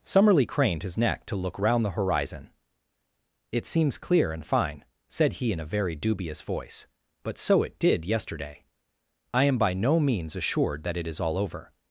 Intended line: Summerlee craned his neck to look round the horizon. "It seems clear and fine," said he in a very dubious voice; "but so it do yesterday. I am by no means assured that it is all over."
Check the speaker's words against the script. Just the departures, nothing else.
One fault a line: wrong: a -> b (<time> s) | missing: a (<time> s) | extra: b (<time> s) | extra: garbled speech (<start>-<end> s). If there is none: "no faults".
wrong: do -> did (7.8 s)